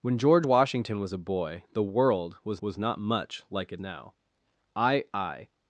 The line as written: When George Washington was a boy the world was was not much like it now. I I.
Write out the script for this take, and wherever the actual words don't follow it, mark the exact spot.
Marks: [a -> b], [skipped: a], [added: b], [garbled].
When George Washington was a boy the world was was not much like it now. I I.